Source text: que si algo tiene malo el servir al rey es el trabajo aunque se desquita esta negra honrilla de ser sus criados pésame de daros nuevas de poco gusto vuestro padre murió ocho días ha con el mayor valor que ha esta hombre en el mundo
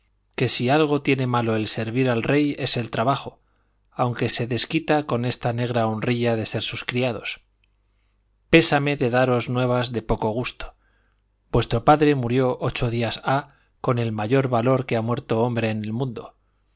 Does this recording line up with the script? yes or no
no